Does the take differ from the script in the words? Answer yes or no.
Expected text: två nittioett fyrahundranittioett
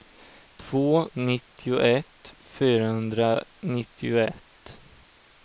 no